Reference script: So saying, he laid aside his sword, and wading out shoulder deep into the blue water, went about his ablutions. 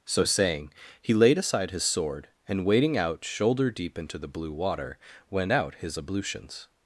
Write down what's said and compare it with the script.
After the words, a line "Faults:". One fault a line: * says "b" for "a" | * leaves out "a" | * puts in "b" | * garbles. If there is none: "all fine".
So saying, he laid aside his sword, and wading out shoulder deep into the blue water, went out his ablutions.
Faults:
* says "out" for "about"